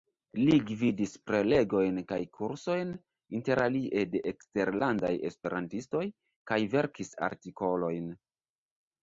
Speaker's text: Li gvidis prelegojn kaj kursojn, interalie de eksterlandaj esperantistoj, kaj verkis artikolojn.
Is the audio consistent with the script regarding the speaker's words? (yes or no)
yes